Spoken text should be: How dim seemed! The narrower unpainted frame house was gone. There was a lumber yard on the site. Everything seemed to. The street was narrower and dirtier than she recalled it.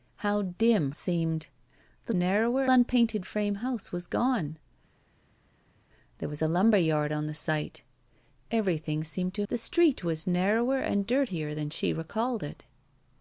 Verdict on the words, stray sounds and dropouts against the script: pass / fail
pass